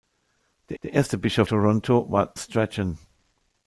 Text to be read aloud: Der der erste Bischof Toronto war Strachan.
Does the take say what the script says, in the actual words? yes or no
yes